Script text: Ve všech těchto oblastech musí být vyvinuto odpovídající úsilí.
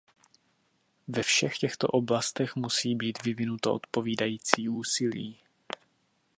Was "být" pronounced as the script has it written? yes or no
yes